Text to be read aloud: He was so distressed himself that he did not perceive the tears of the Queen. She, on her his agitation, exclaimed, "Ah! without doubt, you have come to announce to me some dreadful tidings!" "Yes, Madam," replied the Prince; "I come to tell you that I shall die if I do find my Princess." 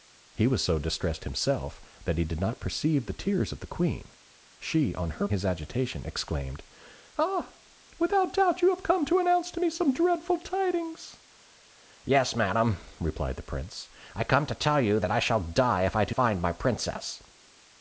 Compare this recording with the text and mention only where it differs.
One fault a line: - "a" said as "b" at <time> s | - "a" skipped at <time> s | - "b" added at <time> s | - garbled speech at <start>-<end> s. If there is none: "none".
none